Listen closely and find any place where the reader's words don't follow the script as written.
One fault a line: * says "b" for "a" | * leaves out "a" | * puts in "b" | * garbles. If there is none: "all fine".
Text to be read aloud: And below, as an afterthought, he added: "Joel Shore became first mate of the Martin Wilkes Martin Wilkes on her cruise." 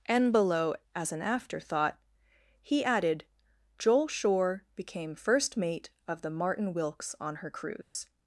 * leaves out "Martin Wilkes"